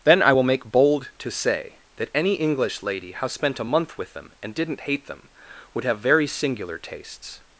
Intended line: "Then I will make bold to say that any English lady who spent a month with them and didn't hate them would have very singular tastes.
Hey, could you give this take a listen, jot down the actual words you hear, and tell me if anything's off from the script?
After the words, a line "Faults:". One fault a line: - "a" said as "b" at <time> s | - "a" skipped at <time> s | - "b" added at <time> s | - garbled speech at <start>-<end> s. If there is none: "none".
"Then I will make bold to say that any English lady how spent a month with them and didn't hate them would have very singular tastes.
Faults:
- "who" said as "how" at 3.1 s